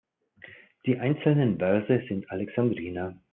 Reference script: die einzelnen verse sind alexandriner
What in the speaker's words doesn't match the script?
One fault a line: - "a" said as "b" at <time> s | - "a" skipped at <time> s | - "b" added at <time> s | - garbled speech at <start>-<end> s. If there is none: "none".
none